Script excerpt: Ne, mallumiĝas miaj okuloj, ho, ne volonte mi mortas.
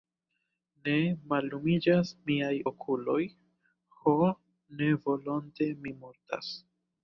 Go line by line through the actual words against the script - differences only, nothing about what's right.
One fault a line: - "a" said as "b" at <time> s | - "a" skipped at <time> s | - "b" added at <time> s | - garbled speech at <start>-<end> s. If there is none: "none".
none